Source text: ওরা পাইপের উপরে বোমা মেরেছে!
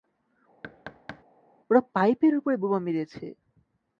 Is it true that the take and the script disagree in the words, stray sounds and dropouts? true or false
true